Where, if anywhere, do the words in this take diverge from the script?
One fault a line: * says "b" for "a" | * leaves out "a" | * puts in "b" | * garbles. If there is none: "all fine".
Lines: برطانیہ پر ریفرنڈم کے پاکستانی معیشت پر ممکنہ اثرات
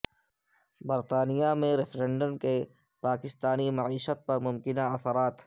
* says "میں" for "پر"